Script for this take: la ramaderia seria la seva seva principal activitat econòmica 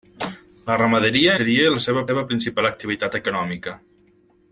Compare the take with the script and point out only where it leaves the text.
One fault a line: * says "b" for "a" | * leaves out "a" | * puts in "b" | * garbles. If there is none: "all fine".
all fine